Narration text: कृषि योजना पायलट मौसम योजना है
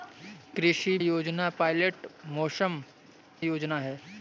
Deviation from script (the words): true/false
false